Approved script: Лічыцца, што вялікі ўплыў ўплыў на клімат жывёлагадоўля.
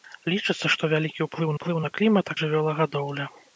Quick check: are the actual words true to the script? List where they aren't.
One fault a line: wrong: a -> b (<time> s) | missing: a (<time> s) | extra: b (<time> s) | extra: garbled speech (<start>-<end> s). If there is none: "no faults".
no faults